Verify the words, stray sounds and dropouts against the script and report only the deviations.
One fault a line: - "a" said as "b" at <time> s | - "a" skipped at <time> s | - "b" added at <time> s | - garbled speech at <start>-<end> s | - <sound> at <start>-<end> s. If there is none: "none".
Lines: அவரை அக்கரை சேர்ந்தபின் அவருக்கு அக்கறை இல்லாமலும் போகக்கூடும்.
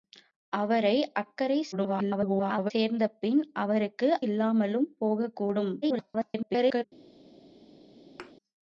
- garbled speech at 1.7-2.7 s
- "அக்கறை" skipped at 4.2 s
- garbled speech at 5.8-6.8 s
- thud at 8.2-8.3 s